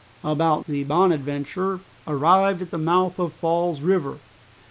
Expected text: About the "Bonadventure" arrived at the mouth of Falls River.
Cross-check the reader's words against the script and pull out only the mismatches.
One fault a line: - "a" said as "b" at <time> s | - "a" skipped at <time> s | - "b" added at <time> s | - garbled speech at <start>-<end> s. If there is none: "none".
none